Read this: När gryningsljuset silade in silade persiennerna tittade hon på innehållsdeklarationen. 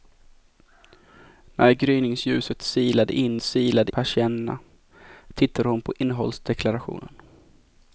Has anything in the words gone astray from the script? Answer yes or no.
no